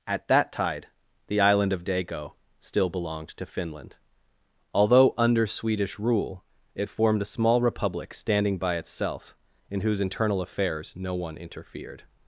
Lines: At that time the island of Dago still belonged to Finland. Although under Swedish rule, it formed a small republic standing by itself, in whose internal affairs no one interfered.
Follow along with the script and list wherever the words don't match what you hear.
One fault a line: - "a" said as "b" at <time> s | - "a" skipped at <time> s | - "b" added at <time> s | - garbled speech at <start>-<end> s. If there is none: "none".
- "time" said as "tide" at 0.5 s